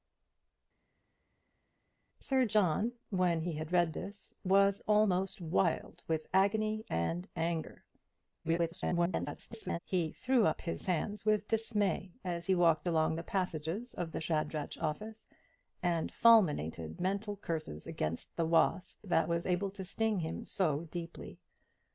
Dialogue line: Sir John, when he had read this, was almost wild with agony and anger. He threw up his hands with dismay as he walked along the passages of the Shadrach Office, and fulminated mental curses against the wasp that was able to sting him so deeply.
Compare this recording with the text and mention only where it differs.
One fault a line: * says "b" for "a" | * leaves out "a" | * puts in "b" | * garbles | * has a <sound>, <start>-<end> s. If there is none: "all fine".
* garbles